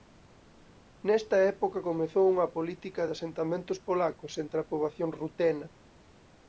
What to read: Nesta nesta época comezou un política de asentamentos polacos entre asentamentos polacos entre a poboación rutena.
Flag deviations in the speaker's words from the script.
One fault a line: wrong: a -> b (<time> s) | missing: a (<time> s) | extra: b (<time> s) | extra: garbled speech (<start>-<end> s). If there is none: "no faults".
missing: nesta (1.4 s)
wrong: un -> unha (2.3 s)
missing: asentamentos polacos entre (4.6 s)